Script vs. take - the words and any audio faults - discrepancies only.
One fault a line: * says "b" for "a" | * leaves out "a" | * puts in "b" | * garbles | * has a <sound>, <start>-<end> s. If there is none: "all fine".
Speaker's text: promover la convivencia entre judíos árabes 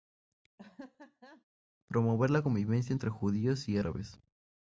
* has a laugh, 0.6-1.4 s
* puts in "y"